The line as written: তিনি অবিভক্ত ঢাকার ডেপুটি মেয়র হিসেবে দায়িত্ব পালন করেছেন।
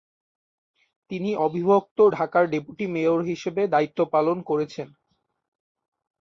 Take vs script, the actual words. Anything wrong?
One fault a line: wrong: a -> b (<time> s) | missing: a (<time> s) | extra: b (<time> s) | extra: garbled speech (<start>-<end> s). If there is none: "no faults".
no faults